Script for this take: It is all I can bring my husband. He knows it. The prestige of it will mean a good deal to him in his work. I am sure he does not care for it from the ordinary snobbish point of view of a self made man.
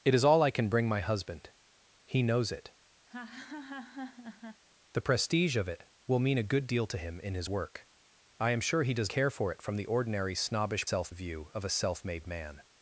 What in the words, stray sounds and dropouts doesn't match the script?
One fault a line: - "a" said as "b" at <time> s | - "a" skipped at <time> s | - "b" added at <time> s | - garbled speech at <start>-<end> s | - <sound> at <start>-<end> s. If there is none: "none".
- laugh at 3.1-4.6 s
- "not" skipped at 9.1 s
- "point" said as "self" at 10.8 s